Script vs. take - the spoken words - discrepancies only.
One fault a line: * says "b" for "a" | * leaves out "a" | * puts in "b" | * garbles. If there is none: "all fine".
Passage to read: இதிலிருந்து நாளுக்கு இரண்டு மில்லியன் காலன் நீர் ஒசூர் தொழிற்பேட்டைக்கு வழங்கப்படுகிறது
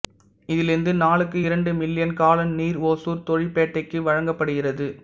all fine